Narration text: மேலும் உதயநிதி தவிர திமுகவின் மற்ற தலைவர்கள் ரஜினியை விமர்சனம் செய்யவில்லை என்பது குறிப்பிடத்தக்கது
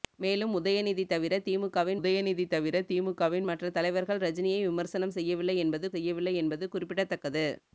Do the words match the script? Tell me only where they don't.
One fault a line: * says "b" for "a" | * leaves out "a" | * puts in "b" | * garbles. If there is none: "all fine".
* puts in "உதயநிதி தவிர திமுகவின்"
* puts in "செய்யவில்லை என்பது"